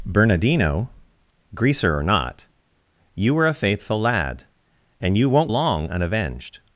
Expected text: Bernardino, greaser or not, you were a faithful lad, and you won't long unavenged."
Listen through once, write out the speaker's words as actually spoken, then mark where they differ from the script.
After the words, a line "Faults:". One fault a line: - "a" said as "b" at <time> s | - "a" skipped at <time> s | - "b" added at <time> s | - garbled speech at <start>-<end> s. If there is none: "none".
Bernardino, greaser or not, you were a faithful lad, and you won't long unavenged."
Faults:
none